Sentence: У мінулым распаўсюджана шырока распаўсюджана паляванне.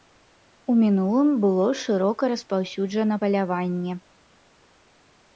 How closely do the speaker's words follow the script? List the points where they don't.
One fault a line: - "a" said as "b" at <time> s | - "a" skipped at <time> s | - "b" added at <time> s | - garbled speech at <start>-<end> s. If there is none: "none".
- "распаўсюджана" said as "было" at 1.4 s